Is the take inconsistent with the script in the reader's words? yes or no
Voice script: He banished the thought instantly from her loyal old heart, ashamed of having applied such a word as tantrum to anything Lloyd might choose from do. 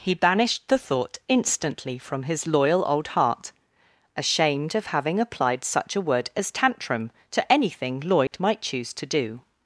yes